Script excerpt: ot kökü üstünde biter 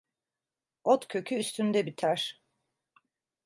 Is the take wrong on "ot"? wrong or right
right